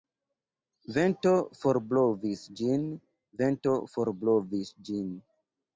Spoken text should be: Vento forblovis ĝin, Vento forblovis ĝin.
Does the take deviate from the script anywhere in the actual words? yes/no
no